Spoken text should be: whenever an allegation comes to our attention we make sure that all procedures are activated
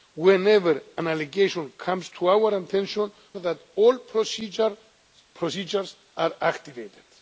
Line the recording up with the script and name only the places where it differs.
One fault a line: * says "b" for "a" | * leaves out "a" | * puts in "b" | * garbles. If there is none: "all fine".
* leaves out "we make sure"